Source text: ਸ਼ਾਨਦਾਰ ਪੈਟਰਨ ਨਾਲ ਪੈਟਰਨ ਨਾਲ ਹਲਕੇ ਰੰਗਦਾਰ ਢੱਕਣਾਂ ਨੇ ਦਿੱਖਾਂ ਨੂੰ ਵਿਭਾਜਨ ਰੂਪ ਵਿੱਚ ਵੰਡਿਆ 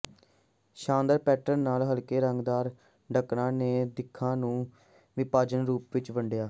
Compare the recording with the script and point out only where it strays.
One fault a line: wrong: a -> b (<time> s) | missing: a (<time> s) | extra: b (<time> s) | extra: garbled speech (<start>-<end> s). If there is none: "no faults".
missing: ਪੈਟਰਨ ਨਾਲ (1.8 s)